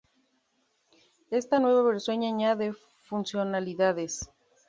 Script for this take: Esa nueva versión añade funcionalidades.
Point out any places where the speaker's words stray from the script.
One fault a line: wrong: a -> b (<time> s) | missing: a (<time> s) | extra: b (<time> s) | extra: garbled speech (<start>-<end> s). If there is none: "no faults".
wrong: Esa -> Esta (1.3 s)